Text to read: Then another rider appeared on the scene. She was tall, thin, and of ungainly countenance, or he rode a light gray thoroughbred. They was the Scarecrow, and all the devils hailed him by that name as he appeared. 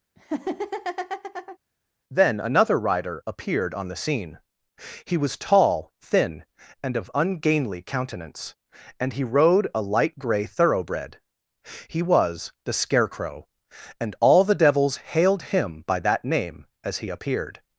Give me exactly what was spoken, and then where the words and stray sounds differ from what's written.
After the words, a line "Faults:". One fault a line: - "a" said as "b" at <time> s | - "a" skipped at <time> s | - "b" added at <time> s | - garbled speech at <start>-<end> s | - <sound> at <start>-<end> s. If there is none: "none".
Then another rider appeared on the scene. He was tall, thin, and of ungainly countenance, and he rode a light gray thoroughbred. He was the Scarecrow, and all the devils hailed him by that name as he appeared.
Faults:
- laugh at 0.2-1.6 s
- "She" said as "He" at 5.0 s
- "or" said as "and" at 9.0 s
- "They" said as "He" at 11.9 s